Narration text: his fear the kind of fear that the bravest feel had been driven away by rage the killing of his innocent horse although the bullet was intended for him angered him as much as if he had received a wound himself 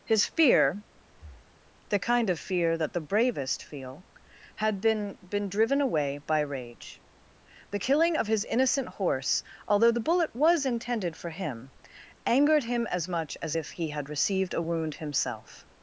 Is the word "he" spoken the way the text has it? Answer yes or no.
yes